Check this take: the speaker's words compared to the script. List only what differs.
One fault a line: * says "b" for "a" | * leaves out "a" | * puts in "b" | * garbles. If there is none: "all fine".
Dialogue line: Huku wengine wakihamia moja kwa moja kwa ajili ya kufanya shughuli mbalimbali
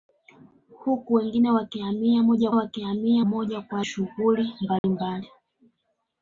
* says "wakihamia" for "kwa"
* leaves out "ajili ya kufanya"